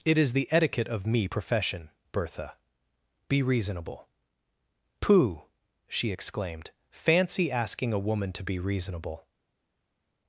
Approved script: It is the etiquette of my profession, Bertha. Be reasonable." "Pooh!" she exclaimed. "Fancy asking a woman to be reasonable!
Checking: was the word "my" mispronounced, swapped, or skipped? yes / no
yes